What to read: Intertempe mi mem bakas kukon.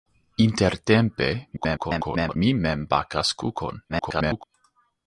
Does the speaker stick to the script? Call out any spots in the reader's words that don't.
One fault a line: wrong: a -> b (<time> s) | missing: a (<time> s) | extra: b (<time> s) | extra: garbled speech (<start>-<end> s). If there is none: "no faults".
extra: garbled speech (1.6-2.4 s)
extra: garbled speech (3.9-4.4 s)